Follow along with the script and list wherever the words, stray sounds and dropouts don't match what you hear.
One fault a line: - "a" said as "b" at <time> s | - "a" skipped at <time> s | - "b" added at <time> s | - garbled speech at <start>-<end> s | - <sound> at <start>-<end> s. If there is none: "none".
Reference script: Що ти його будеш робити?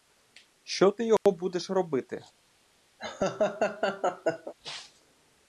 - dropout at 1.2-1.3 s
- laugh at 3.0-4.5 s